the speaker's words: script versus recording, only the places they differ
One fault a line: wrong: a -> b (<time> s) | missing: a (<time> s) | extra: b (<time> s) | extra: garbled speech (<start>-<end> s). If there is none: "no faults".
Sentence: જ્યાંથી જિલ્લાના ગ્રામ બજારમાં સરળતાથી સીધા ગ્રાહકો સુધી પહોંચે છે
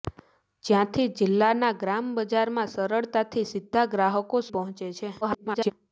missing: સુધી (4.5 s)
extra: garbled speech (5.2-5.7 s)